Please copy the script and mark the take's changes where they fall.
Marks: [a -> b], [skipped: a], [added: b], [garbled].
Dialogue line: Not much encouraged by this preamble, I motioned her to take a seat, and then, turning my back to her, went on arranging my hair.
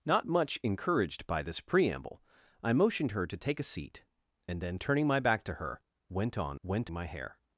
Not much encouraged by this preamble, I motioned her to take a seat, and then, turning my back to her, went on [arranging -> went] my hair.